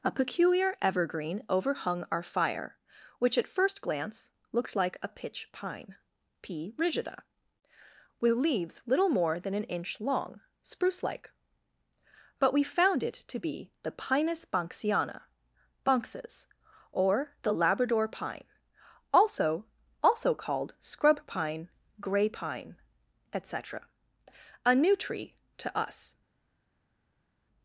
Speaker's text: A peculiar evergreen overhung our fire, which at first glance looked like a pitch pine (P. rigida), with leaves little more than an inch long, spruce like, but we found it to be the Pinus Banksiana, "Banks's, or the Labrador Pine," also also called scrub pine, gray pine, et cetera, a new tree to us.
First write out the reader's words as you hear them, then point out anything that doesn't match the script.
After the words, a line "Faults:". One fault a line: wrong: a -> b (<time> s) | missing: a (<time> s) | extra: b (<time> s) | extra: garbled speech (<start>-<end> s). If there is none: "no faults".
A peculiar evergreen overhung our fire, which at first glance looked like a pitch pine (P. rigida), with leaves little more than an inch long, spruce like, but we found it to be the Pinus Banksiana, "Banks's, or the Labrador Pine," also also called scrub pine, gray pine, et cetera, a new tree to us.
Faults:
no faults